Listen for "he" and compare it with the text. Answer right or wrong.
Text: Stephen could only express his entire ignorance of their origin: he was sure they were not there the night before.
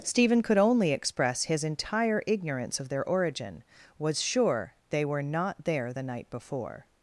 wrong